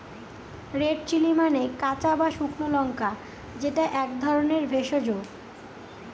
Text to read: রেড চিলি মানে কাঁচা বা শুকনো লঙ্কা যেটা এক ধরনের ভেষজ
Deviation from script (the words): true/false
false